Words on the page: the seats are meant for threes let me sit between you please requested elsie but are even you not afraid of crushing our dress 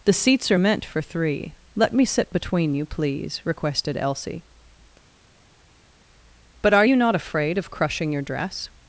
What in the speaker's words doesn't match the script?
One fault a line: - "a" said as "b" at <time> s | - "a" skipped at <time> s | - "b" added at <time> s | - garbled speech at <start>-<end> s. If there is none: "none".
- "threes" said as "three" at 1.0 s
- "even" skipped at 6.8 s
- "our" said as "your" at 8.1 s